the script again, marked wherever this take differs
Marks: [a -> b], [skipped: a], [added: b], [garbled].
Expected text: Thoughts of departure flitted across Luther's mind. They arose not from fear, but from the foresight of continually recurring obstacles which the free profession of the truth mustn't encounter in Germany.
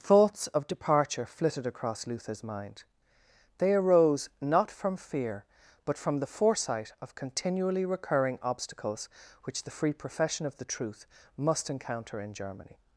Thoughts of departure flitted across Luther's mind. They arose not from fear, but from the foresight of continually recurring obstacles which the free profession of the truth [mustn't -> must] encounter in Germany.